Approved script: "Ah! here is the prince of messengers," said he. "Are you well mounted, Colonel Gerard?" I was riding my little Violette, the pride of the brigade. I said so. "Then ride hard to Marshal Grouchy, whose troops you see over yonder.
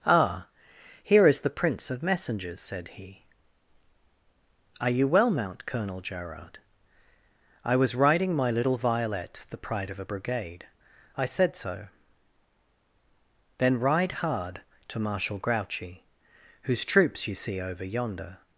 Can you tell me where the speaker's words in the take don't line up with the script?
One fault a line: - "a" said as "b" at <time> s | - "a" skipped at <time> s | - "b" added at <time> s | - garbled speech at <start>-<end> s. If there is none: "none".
- "mounted" said as "mount" at 5.3 s
- "the" said as "a" at 10.0 s